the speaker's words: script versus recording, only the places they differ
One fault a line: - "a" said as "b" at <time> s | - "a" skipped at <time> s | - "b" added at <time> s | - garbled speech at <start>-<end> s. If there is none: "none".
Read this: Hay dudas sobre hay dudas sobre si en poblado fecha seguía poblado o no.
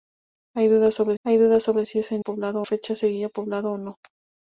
none